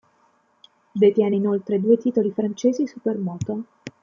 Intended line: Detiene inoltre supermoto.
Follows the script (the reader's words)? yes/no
no